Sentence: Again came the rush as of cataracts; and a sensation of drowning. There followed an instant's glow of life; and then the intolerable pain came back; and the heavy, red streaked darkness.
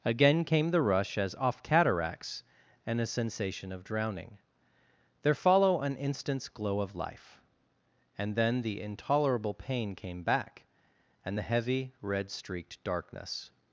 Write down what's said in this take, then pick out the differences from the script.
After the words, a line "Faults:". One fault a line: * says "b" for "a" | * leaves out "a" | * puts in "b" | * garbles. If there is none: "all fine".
Again came the rush as off cataracts; and a sensation of drowning. There follow an instant's glow of life; and then the intolerable pain came back; and the heavy, red streaked darkness.
Faults:
* says "off" for "of"
* says "follow" for "followed"